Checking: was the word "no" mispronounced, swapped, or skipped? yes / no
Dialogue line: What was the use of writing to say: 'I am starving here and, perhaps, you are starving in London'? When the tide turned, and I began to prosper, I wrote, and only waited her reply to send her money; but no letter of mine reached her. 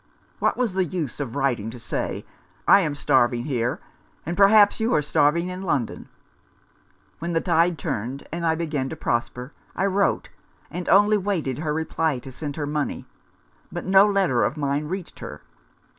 no